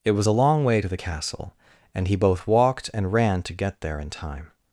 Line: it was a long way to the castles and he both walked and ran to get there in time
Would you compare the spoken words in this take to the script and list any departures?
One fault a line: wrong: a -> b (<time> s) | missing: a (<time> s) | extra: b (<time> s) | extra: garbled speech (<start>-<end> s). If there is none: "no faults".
wrong: castles -> castle (0.9 s)